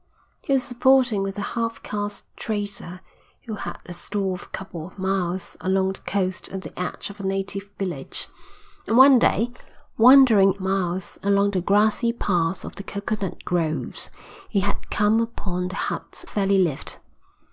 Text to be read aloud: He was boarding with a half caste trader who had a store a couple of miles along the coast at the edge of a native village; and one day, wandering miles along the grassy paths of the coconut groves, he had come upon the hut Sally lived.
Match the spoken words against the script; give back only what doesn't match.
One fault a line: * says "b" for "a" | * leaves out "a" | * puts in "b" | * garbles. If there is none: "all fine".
all fine